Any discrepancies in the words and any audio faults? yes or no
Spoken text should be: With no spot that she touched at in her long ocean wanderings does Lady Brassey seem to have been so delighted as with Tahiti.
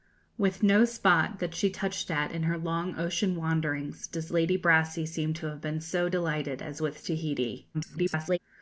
yes